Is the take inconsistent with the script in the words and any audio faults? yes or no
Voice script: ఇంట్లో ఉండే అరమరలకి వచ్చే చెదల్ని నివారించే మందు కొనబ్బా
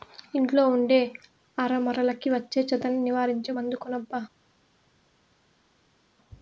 no